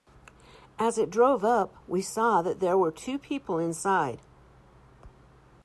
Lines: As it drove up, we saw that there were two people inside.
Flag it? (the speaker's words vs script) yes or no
no